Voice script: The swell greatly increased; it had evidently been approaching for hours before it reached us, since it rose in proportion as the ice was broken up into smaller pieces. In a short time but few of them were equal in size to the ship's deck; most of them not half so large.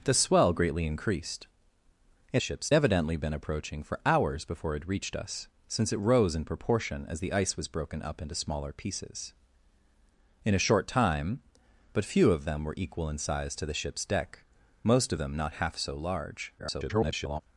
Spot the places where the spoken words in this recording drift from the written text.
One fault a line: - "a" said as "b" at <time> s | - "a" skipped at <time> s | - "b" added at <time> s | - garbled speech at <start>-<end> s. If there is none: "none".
- "had" said as "ship's" at 2.4 s
- garbled speech at 16.6-17.4 s